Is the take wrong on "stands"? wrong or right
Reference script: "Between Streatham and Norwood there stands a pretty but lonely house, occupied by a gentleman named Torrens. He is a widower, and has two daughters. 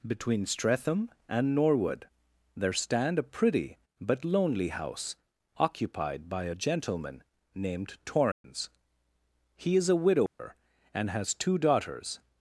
wrong